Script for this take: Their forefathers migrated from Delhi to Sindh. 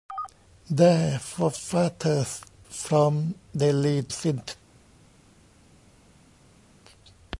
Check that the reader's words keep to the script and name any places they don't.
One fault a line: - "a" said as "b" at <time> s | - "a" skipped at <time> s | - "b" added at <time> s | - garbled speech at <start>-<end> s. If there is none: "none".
- "migrated" skipped at 2.4 s
- "to" skipped at 4.1 s